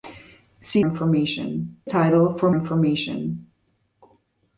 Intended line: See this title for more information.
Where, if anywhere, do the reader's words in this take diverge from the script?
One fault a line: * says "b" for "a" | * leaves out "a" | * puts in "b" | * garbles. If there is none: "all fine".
* says "information" for "this"
* leaves out "more"